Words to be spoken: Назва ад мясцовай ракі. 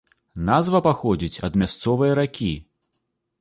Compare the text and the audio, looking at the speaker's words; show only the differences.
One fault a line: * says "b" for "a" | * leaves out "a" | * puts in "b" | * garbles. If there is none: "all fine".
* puts in "паходзіць"